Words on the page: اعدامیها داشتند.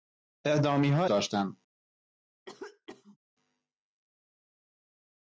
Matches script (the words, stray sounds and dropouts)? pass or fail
fail